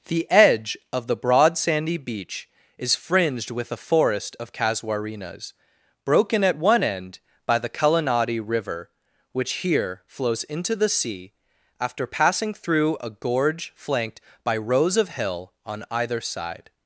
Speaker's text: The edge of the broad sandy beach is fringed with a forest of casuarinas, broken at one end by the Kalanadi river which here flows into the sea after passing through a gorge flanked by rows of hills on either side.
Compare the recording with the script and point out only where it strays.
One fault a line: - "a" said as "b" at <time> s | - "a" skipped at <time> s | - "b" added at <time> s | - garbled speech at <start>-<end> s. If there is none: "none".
- "hills" said as "hill" at 15.1 s